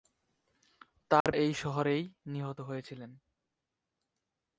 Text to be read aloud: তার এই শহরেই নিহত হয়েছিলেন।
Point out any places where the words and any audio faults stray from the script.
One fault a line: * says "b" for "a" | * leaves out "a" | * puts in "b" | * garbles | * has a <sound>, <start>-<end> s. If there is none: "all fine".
* has a dropout, 1.2-1.3 s